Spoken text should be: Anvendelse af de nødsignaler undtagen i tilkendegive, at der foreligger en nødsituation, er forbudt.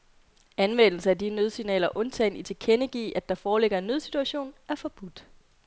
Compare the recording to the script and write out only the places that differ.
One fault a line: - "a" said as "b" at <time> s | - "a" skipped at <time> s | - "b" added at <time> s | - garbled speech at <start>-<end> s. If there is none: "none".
none